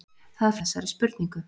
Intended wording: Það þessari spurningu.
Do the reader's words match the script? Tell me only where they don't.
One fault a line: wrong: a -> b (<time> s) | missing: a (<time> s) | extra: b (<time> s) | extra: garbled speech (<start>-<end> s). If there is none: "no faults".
no faults